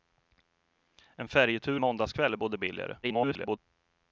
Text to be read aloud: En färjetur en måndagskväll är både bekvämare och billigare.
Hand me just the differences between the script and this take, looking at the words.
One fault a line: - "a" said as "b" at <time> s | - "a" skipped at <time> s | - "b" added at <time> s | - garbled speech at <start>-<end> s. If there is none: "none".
- "en" skipped at 1.8 s
- "bekvämare" skipped at 2.6 s
- garbled speech at 3.0-3.6 s